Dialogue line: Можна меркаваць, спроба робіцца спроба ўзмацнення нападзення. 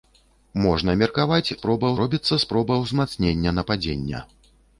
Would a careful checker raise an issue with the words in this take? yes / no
no